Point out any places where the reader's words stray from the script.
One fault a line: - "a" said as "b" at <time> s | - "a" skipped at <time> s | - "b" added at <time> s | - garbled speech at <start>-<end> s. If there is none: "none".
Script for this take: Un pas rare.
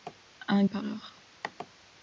none